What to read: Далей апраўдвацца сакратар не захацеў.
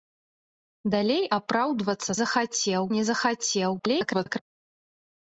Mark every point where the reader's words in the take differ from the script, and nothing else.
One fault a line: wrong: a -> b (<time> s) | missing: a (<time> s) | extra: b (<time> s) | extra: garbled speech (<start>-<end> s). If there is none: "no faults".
wrong: сакратар -> захацеў (2.2 s)
extra: garbled speech (3.8-4.4 s)